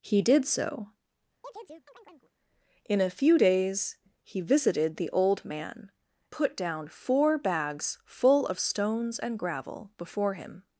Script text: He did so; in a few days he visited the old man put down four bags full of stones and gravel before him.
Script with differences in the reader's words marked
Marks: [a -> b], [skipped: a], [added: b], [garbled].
He did so; in a few days he visited the old man put down four bags full of stones and gravel before him.